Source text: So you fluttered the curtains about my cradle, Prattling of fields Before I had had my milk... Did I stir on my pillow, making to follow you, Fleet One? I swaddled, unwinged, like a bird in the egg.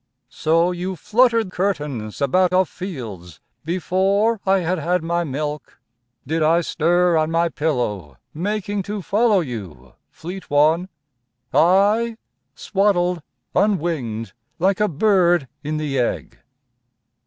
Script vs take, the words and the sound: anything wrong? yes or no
yes